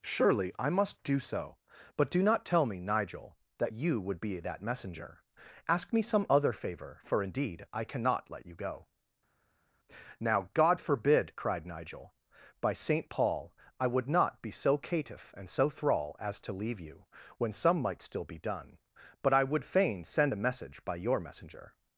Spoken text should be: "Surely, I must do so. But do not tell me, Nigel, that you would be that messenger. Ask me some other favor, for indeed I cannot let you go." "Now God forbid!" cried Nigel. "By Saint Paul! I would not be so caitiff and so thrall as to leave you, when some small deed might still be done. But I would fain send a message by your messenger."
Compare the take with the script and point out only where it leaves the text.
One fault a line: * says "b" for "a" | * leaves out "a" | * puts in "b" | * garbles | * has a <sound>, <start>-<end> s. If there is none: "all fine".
* leaves out "small deed"